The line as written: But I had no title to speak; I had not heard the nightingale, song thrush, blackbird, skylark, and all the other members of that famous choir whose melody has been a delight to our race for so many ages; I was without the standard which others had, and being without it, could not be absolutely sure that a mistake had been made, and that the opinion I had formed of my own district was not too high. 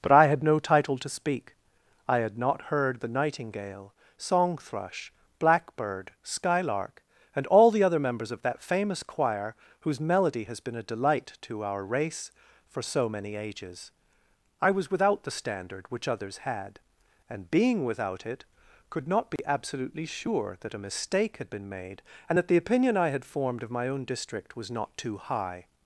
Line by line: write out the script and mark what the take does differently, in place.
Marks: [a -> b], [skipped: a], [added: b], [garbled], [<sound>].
But I had no title to speak; I had not heard the nightingale, song thrush, blackbird, skylark, and all the other members of that famous choir whose melody has been a delight to our race for so many ages; I was without the standard which others had, and being without it, could not be [dropout] absolutely sure that a mistake had been made, and that the opinion I had formed of my own district was not too high.